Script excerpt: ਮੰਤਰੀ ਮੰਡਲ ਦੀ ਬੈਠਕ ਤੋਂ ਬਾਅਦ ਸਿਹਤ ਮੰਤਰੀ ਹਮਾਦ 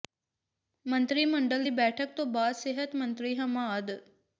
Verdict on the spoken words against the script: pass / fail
pass